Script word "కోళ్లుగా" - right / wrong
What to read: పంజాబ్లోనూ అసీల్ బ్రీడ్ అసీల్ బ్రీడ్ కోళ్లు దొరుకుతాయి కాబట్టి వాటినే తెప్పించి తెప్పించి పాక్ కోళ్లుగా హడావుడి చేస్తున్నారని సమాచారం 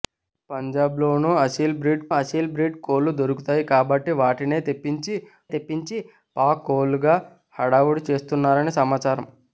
right